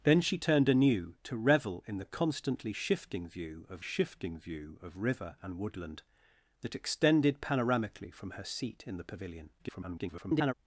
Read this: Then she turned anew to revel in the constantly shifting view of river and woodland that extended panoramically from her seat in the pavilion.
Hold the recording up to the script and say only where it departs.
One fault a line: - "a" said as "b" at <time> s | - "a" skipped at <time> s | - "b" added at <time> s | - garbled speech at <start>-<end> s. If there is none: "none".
- "shifting view of" added at 3.8 s
- garbled speech at 9.6-10.5 s